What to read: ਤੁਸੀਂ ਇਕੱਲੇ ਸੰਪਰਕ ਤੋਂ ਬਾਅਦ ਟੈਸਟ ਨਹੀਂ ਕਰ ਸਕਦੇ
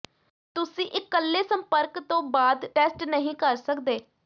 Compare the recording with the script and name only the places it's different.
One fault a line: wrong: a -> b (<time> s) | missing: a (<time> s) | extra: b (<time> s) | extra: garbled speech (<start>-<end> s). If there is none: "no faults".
no faults